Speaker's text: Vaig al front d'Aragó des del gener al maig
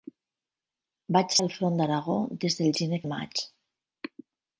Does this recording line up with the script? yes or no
yes